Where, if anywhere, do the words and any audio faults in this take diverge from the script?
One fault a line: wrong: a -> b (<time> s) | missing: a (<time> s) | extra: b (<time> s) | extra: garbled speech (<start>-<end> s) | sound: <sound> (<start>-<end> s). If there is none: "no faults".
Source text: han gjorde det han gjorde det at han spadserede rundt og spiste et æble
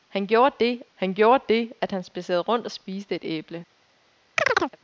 sound: chirp (4.4-4.8 s)